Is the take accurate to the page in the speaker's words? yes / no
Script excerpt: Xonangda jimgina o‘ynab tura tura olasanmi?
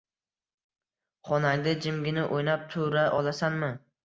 no